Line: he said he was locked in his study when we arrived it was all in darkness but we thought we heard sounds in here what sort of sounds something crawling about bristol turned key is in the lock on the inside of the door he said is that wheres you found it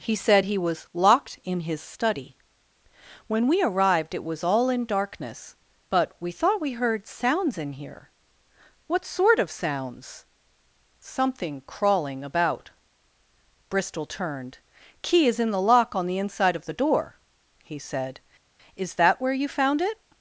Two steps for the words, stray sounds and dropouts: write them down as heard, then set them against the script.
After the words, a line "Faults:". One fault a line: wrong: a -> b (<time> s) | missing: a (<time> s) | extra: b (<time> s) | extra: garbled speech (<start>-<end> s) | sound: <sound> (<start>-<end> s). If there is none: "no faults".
he said he was locked in his study when we arrived it was all in darkness but we thought we heard sounds in here what sort of sounds something crawling about bristol turned key is in the lock on the inside of the door he said is that where you found it
Faults:
wrong: wheres -> where (19.2 s)